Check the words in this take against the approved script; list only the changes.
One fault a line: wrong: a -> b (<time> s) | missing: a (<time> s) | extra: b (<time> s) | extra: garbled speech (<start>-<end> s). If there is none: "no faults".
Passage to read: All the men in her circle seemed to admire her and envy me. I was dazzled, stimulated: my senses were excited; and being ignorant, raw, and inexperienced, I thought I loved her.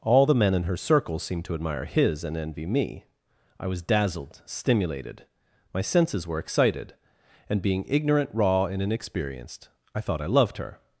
wrong: her -> his (1.8 s)